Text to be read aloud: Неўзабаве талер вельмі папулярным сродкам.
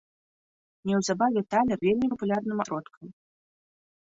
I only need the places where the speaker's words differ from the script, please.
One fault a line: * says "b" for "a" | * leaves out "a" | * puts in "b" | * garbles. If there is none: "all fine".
all fine